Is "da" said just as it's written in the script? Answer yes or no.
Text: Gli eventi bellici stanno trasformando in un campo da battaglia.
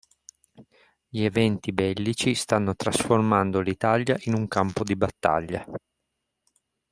no